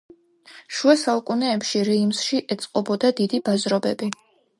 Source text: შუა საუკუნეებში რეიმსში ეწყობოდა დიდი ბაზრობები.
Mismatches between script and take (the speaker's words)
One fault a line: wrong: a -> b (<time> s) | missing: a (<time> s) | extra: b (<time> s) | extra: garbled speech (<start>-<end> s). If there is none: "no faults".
no faults